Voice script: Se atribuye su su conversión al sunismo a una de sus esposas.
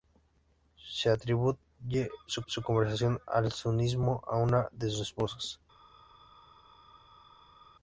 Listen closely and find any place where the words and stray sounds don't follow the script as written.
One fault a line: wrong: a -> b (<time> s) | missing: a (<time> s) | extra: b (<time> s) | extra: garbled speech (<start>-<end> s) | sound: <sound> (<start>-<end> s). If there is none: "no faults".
no faults